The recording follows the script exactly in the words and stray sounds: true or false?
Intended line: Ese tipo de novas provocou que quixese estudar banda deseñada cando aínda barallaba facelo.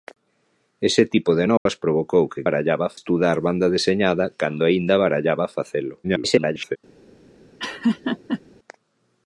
false